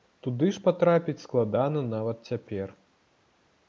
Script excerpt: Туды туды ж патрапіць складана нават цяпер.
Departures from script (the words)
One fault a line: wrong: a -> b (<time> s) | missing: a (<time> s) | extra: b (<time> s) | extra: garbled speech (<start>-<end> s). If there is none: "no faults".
missing: туды (0.5 s)